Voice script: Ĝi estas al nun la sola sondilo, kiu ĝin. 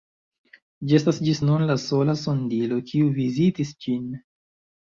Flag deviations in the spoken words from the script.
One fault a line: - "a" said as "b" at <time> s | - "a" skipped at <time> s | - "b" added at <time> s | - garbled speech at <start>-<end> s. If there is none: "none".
- "al" said as "ĝis" at 1.3 s
- "vizitis" added at 3.2 s